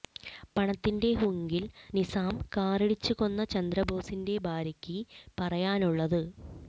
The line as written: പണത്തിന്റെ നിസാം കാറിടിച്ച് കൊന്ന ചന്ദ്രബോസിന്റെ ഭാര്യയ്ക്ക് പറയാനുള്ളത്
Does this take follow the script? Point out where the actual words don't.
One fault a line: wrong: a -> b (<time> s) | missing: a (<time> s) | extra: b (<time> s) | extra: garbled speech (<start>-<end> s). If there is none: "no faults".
extra: ഹുങ്കിൽ (1.1 s)